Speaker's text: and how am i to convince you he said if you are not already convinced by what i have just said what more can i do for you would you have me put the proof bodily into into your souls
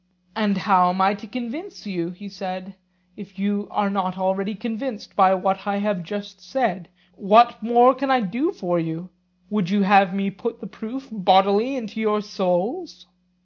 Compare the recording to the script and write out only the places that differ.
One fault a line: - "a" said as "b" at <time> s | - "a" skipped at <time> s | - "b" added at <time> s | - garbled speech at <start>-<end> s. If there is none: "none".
- "into" skipped at 12.0 s